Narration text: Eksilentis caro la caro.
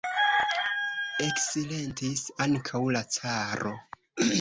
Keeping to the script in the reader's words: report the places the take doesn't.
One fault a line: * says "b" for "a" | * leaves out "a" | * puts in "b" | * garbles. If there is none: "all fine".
* says "ankaŭ" for "caro"